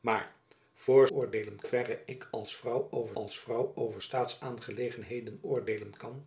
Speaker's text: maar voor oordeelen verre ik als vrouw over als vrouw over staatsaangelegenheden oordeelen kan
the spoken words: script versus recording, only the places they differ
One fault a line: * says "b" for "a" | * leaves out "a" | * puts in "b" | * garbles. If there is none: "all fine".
all fine